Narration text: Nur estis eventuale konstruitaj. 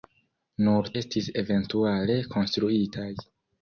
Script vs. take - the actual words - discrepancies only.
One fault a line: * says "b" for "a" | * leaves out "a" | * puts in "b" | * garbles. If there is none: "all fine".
all fine